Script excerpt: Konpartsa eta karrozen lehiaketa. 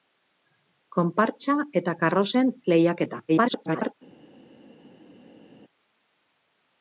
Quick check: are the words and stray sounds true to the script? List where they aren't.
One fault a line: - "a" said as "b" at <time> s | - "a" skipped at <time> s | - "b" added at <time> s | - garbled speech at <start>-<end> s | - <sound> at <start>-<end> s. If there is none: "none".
- garbled speech at 3.3-3.9 s